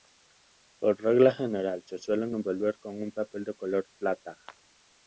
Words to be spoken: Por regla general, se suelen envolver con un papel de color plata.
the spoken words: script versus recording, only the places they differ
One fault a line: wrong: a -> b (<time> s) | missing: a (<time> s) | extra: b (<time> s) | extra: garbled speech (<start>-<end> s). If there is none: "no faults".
no faults